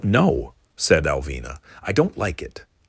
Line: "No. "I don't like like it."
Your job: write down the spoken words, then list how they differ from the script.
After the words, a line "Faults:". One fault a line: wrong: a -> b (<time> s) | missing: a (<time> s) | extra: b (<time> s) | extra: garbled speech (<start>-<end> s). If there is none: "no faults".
"No," said Alvina. "I don't like it."
Faults:
extra: said Alvina (0.8 s)
missing: like (2.4 s)